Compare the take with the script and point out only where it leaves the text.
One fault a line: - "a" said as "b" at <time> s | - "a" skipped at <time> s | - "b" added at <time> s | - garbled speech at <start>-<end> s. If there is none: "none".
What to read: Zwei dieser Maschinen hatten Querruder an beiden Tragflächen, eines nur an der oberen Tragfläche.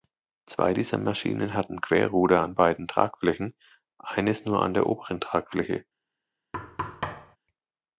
none